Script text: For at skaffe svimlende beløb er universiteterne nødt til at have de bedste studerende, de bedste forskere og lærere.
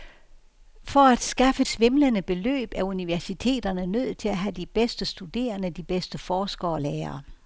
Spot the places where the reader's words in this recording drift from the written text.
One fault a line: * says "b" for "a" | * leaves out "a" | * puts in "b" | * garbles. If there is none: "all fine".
all fine